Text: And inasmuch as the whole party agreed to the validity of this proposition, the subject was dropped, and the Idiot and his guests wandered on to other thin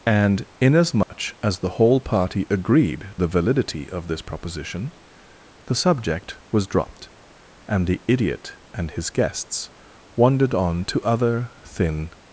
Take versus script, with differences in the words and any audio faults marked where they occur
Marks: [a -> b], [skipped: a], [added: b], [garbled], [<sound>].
And inasmuch [dropout] as the whole party agreed [skipped: to] the validity of this proposition, the subject was dropped, and the Idiot and his guests wandered on to other thin